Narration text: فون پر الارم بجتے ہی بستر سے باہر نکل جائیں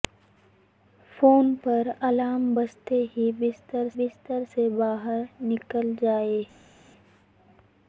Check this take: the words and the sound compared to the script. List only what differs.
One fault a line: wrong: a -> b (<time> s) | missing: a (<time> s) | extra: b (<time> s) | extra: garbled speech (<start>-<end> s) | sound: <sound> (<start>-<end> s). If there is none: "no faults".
extra: بستر (4.0 s)